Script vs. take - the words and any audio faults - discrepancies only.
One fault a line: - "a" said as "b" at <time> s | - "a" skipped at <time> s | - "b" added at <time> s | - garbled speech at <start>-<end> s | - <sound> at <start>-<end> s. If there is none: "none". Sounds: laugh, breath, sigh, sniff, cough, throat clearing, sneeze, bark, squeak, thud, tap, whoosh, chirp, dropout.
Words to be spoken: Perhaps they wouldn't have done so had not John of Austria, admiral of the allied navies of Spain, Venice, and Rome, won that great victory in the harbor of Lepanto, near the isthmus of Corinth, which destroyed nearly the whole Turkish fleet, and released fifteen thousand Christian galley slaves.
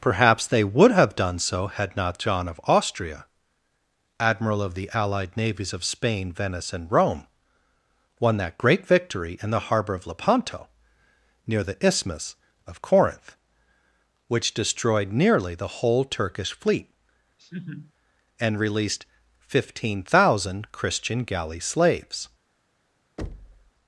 - "wouldn't" said as "would" at 0.6 s
- laugh at 17.4-17.9 s
- thud at 23.2-23.7 s